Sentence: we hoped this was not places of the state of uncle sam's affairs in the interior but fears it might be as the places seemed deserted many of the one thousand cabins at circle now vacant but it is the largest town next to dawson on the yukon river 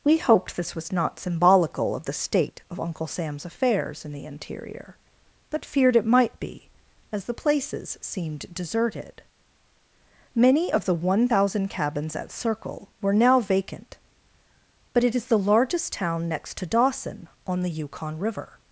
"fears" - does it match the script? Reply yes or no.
no